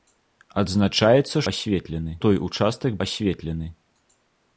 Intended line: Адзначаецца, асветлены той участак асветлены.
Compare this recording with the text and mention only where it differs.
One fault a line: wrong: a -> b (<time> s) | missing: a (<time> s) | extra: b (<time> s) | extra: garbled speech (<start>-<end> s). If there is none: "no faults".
no faults